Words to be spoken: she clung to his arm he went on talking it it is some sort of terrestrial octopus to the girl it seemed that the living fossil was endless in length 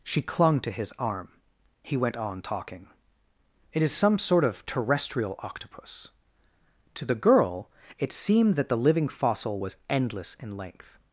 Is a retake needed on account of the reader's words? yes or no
yes